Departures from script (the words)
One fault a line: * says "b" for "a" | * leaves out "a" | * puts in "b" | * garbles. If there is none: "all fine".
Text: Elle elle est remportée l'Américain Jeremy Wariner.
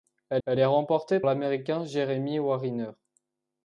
all fine